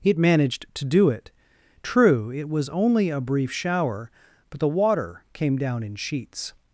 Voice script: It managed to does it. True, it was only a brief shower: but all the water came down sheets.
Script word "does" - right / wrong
wrong